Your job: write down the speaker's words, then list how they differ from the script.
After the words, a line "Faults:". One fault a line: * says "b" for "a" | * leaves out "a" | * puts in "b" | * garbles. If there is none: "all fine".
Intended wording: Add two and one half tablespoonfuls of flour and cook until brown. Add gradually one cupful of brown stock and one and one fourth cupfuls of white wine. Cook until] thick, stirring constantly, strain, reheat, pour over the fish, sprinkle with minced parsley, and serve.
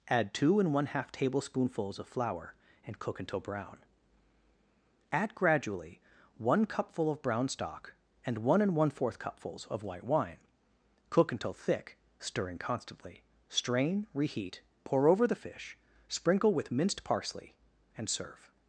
Add two and one half tablespoonfuls of flour and cook until brown. Add gradually one cupful of brown stock and one and one fourth cupfuls of white wine. Cook until] thick, stirring constantly, strain, reheat, pour over the fish, sprinkle with minced parsley, and serve.
Faults:
all fine